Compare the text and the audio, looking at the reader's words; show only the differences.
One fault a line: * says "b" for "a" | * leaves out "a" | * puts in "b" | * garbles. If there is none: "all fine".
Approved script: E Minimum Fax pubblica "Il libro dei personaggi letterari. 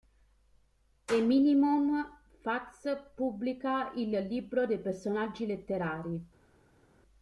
all fine